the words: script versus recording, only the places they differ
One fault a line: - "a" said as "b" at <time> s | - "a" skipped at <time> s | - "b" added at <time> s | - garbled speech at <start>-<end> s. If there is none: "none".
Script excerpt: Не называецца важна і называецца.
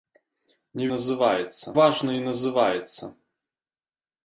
none